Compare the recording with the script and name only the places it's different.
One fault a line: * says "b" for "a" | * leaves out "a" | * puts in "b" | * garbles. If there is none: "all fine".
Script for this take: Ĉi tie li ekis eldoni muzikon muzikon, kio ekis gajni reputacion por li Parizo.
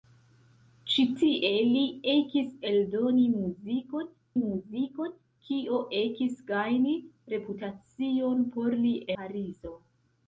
all fine